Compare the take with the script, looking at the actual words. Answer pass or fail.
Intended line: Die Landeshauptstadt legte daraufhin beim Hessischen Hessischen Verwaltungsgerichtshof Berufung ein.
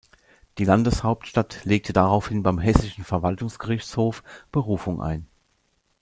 fail